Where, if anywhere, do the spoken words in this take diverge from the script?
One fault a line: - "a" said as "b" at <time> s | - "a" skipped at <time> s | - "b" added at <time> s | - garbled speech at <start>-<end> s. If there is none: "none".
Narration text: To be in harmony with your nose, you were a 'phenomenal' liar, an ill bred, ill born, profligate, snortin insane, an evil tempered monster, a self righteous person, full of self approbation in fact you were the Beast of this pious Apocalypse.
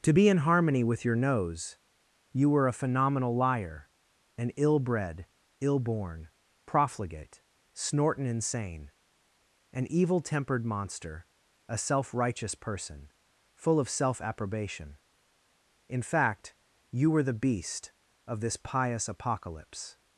none